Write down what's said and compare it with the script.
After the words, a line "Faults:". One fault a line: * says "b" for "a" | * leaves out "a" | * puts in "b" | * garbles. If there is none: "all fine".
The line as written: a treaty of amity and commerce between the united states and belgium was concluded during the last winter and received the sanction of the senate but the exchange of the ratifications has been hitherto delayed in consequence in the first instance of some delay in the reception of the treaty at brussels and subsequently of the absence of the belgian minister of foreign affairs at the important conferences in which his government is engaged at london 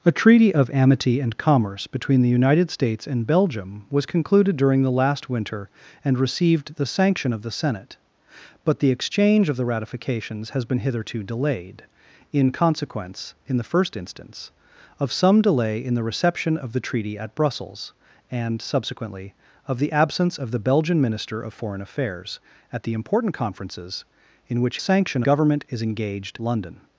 a treaty of amity and commerce between the united states and belgium was concluded during the last winter and received the sanction of the senate but the exchange of the ratifications has been hitherto delayed in consequence in the first instance of some delay in the reception of the treaty at brussels and subsequently of the absence of the belgian minister of foreign affairs at the important conferences in which sanction government is engaged london
Faults:
* says "sanction" for "his"
* leaves out "at"